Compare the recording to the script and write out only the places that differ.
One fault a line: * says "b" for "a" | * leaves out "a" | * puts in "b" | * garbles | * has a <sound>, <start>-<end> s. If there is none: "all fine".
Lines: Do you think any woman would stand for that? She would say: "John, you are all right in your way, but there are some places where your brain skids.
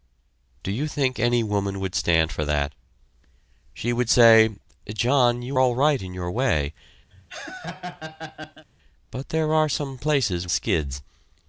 * leaves out "are"
* has a laugh, 7.1-8.7 s
* leaves out "where your brain"